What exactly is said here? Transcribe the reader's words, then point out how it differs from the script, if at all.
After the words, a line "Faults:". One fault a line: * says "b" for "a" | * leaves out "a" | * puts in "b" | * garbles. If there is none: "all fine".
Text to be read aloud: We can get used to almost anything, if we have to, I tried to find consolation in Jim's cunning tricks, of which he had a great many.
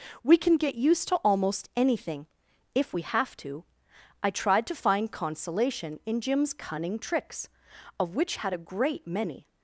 We can get used to almost anything, if we have to, I tried to find consolation in Jim's cunning tricks, of which had a great many.
Faults:
* leaves out "he"